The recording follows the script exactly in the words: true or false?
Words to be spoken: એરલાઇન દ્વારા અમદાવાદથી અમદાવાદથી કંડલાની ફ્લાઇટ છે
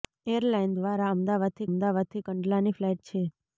true